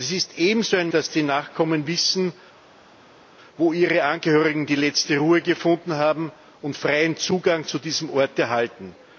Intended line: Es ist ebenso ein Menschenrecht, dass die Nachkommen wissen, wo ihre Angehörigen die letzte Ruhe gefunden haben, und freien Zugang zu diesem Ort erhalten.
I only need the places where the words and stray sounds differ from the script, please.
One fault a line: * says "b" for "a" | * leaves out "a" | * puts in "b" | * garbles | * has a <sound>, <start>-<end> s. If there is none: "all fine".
* leaves out "Menschenrecht"